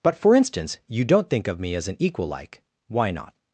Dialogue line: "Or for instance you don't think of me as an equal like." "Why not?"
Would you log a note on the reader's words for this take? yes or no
yes